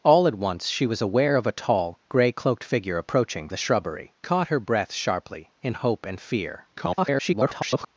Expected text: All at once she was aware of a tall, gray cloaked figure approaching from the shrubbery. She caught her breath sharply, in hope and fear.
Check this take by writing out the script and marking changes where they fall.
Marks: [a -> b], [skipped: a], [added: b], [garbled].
All at once she was aware of a tall, gray cloaked figure approaching [skipped: from] the shrubbery. [skipped: She] caught her breath sharply, in hope and fear. [garbled]